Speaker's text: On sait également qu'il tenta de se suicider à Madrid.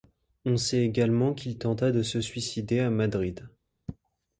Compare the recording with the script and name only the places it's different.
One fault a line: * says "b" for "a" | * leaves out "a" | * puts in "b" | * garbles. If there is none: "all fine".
all fine